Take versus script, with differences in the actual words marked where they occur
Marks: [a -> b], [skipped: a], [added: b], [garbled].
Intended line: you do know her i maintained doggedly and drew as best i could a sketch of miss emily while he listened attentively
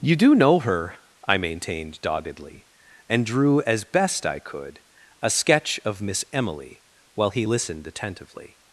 you do know her i maintained doggedly and drew as best i could a sketch of miss emily while he listened attentively